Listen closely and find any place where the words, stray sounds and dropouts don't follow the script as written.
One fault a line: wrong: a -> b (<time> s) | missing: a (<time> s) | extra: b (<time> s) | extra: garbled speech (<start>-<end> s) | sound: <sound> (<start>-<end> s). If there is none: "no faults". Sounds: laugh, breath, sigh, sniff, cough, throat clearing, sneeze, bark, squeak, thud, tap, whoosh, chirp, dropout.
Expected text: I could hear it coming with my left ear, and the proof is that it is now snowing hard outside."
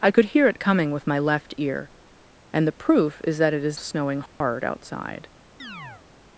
missing: now (3.8 s)
sound: dropout (4.3-4.4 s)
sound: chirp (5.6-6.1 s)